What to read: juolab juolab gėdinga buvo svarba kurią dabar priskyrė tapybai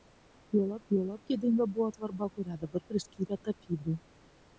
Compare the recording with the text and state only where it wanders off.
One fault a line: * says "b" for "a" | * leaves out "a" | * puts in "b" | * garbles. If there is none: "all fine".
all fine